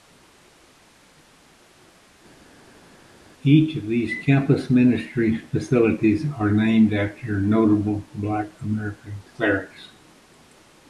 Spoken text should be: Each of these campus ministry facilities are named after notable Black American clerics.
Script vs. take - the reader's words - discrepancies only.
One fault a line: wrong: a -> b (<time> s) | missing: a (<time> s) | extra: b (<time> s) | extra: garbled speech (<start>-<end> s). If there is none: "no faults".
no faults